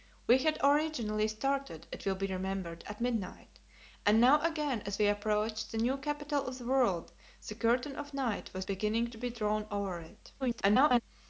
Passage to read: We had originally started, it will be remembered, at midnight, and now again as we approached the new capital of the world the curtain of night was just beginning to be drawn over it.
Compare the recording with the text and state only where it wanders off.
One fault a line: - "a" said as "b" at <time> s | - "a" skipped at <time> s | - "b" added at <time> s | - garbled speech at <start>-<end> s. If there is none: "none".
- "just" skipped at 8.6 s
- garbled speech at 10.4-11.0 s